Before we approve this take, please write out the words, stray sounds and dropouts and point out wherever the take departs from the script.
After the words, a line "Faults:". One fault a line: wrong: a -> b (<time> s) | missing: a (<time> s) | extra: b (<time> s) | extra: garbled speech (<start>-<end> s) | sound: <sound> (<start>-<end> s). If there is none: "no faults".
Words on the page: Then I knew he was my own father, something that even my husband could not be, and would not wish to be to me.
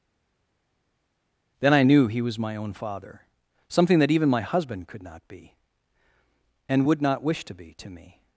Then I knew he was my own father, something that even my husband could not be, and would not wish to be to me.
Faults:
no faults